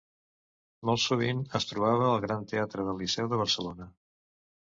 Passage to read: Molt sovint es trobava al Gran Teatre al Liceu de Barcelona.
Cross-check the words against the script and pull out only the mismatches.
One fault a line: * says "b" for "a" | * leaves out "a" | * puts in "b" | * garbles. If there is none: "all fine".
* says "del" for "al"